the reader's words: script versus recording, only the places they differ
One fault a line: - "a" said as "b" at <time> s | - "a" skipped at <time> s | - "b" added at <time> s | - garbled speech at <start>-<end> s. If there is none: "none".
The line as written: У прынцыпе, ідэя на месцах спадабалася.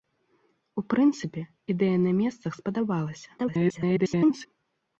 - garbled speech at 3.4-4.5 s